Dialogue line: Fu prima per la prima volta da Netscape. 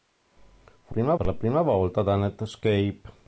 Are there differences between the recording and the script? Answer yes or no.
no